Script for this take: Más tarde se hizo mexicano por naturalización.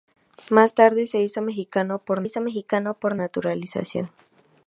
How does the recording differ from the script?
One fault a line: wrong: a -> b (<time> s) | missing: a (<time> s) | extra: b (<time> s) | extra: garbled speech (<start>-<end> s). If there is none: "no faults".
extra: hizo mexicano por (2.2 s)